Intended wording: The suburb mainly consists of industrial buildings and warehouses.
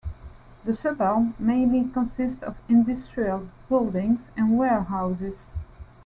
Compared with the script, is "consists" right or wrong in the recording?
right